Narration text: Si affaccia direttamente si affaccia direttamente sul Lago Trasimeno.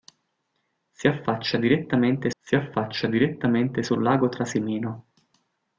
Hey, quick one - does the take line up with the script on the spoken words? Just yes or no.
yes